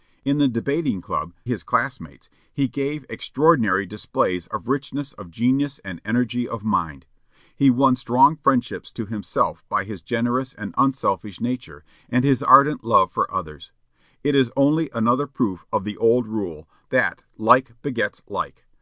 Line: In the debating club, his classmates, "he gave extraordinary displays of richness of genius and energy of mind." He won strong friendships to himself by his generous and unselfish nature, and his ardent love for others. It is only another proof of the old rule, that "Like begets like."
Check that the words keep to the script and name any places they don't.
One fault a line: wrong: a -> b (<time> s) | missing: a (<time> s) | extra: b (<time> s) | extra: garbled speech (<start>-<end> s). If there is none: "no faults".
no faults